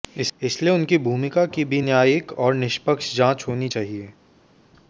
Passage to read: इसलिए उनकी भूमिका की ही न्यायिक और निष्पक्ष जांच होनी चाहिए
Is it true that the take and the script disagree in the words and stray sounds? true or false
true